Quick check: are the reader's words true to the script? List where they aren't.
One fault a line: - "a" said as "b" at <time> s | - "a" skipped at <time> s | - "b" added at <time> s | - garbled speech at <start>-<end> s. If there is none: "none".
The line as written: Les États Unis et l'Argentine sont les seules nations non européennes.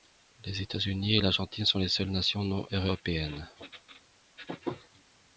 none